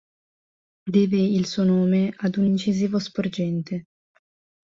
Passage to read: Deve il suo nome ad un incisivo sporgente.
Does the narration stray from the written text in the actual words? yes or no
no